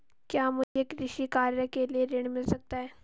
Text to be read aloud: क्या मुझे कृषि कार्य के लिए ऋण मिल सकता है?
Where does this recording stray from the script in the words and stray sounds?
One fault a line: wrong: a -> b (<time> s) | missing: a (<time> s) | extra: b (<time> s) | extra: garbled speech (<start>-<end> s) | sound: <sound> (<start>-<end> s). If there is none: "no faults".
sound: dropout (0.6-0.8 s)